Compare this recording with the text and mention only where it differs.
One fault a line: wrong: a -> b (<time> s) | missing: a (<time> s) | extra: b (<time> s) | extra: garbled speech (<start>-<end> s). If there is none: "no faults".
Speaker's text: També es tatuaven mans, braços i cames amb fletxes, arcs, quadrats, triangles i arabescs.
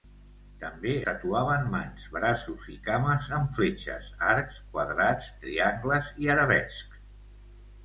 missing: es (0.9 s)